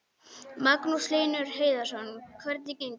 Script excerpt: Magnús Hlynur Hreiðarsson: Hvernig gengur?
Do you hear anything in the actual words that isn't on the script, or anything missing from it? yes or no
no